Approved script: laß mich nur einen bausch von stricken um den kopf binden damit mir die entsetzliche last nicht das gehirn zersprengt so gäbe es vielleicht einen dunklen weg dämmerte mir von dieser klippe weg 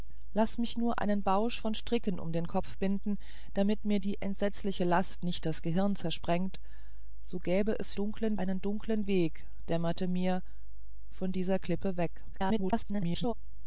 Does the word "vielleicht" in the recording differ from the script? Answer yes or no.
yes